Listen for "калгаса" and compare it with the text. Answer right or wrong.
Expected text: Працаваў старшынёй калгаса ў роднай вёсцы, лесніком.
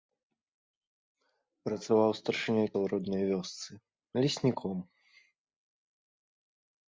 wrong